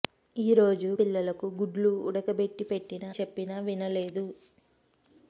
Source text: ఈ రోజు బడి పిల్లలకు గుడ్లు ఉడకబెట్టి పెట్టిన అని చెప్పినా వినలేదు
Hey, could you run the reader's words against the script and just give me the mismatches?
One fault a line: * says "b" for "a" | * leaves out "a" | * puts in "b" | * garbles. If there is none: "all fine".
* leaves out "బడి"
* leaves out "అని"